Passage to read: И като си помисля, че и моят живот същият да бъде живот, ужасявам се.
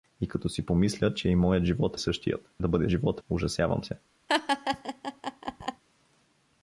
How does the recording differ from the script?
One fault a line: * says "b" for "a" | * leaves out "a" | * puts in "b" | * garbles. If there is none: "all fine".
all fine